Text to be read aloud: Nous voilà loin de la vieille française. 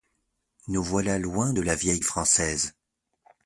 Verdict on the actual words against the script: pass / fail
pass